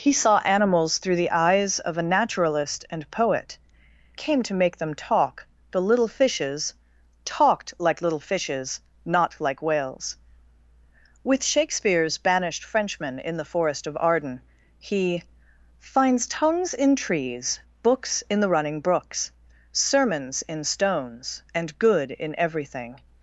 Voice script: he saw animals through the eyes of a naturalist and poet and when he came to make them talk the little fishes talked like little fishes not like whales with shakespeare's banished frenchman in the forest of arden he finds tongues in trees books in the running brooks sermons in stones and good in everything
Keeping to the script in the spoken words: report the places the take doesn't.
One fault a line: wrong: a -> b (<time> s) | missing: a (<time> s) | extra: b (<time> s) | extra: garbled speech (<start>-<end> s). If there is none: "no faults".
missing: and when he (3.6 s)